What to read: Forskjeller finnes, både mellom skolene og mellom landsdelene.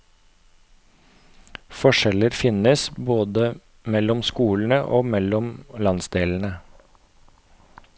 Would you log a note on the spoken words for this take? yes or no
no